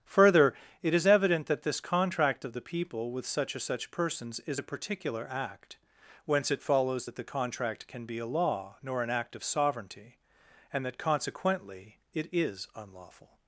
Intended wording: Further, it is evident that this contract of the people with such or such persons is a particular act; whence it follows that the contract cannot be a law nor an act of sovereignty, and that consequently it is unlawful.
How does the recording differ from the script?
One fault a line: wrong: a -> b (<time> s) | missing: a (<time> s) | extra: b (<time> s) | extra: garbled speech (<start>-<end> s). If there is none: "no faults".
wrong: cannot -> can (7.9 s)